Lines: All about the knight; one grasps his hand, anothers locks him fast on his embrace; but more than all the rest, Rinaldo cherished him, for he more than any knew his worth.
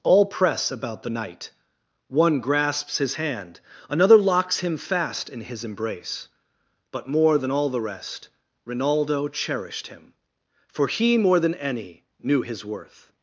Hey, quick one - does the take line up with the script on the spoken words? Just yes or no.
no